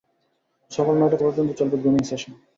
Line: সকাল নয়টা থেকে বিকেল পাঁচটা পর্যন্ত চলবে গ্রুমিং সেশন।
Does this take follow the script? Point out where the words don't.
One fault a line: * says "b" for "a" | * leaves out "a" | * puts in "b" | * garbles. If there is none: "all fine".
* leaves out "থেকে বিকেল পাঁচটা"